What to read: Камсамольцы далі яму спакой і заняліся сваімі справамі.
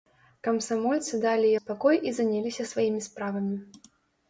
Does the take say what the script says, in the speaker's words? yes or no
no